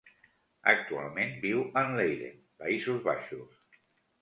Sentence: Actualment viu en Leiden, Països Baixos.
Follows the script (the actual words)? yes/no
yes